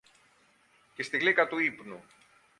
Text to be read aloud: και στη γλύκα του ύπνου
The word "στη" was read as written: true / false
true